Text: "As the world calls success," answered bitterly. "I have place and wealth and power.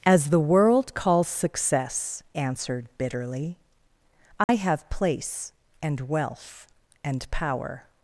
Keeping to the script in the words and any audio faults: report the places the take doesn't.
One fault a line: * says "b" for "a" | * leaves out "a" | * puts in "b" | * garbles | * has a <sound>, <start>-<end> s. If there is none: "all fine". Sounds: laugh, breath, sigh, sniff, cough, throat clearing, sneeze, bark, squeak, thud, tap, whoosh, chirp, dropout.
* has a dropout, 4.4-4.5 s